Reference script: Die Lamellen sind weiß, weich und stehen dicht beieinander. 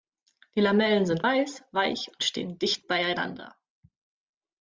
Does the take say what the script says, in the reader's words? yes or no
yes